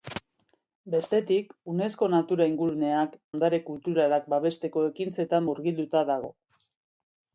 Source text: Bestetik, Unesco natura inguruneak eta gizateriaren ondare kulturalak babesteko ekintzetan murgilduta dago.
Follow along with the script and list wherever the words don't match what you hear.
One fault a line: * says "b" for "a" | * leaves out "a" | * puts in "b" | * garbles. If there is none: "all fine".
* leaves out "eta gizateriaren"